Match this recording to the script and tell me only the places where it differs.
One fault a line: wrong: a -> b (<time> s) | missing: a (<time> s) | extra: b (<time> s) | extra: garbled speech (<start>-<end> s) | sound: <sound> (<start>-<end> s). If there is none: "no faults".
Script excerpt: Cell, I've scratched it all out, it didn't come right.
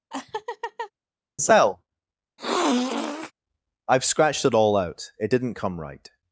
sound: laugh (0.1-0.9 s)
sound: sniff (2.4-3.3 s)